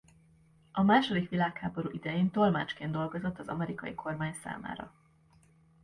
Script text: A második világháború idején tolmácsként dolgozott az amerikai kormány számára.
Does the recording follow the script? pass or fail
pass